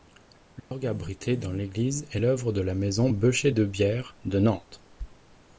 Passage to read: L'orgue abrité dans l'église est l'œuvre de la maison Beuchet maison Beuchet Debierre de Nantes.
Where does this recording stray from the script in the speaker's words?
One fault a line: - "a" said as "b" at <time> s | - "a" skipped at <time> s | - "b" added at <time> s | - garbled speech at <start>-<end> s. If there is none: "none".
- "maison Beuchet" skipped at 3.5 s